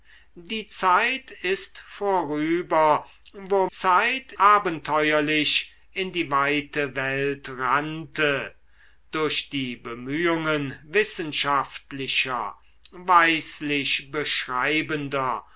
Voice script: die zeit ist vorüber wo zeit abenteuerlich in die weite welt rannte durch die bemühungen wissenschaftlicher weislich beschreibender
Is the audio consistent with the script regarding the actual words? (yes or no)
yes